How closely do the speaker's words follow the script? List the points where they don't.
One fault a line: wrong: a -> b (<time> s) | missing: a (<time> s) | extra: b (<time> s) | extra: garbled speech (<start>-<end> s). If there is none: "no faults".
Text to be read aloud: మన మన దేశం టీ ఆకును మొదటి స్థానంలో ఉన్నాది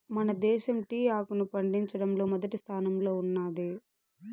missing: మన (0.3 s)
extra: పండించడంలో (1.5 s)